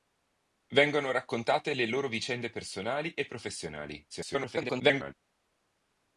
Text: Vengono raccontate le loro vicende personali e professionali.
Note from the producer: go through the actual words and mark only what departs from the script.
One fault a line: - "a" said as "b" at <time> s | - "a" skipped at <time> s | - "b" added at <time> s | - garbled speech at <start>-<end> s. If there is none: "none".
- garbled speech at 4.1-5.1 s